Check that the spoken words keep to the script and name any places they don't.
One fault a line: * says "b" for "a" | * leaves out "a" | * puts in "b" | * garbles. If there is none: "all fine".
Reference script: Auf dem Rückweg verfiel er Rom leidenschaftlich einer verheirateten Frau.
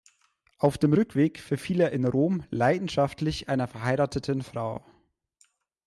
* puts in "in"